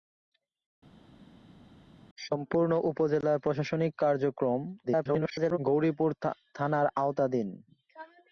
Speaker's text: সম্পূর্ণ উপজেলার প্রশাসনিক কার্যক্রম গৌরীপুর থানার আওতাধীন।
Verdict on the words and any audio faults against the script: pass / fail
fail